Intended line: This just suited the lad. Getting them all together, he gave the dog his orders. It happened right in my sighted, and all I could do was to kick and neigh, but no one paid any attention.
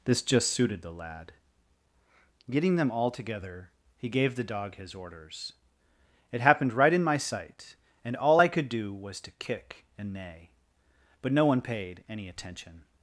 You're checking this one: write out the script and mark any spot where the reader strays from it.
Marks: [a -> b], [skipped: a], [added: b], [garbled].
This just suited the lad. Getting them all together, he gave the dog his orders. It happened right in my [sighted, -> sight] and all I could do was to kick and neigh, but no one paid any attention.